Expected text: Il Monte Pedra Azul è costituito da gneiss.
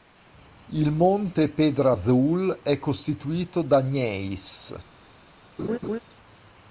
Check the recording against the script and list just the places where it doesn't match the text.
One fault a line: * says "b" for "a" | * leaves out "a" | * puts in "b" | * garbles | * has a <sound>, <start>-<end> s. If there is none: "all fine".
* has a laugh, 5.6-6.0 s